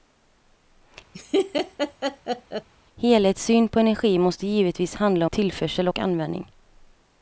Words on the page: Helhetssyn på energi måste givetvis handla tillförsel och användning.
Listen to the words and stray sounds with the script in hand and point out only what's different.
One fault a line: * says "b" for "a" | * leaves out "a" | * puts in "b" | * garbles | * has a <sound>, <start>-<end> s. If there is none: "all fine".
* has a laugh, 1.1-2.7 s